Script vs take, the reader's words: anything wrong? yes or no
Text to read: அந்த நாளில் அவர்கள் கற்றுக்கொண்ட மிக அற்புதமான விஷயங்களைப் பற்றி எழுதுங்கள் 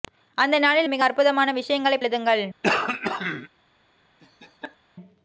yes